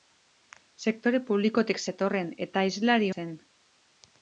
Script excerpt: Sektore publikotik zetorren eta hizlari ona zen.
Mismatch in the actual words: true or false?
true